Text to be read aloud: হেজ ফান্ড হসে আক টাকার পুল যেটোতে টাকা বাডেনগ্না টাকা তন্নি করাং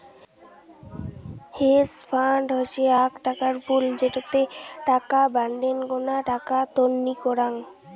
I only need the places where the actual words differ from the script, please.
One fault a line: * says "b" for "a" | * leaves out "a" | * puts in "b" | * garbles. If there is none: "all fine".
all fine